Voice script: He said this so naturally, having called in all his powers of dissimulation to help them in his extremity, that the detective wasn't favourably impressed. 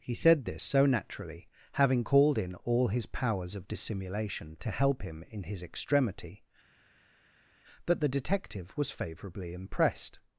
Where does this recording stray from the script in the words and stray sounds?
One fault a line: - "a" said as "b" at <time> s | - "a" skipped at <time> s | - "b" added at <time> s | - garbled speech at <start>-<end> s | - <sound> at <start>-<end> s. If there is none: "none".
- "them" said as "him" at 5.0 s
- "wasn't" said as "was" at 8.8 s